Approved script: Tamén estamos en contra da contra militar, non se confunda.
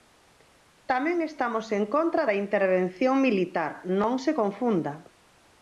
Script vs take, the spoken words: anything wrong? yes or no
yes